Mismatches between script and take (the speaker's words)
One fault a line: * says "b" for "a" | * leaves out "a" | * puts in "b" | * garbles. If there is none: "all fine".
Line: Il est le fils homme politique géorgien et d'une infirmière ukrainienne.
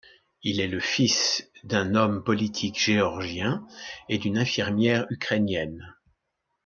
* puts in "d'un"